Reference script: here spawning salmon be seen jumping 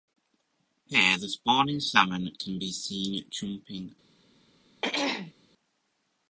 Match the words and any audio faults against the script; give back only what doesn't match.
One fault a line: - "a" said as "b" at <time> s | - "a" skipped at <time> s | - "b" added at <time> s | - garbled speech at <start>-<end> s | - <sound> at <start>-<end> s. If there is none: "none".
- "the" added at 1.2 s
- "can" added at 2.4 s
- throat clearing at 4.8-5.3 s